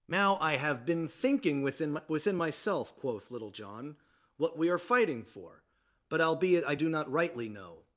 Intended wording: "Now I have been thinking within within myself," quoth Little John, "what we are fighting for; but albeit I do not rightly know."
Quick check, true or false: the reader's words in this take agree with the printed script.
true